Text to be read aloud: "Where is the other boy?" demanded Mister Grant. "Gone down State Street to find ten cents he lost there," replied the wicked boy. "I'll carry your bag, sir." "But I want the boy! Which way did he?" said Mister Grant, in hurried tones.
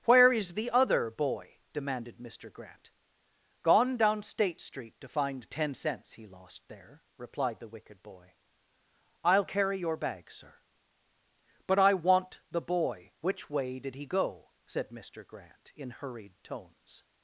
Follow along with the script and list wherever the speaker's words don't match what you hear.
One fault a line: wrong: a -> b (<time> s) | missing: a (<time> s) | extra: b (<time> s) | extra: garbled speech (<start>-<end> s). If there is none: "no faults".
extra: go (14.1 s)